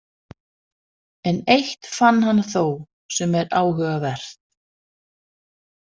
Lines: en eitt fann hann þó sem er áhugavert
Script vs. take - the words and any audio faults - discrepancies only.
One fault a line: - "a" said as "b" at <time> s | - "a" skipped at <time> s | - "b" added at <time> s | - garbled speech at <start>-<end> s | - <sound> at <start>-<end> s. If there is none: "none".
none